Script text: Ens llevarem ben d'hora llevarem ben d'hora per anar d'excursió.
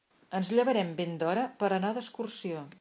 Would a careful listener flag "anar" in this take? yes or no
no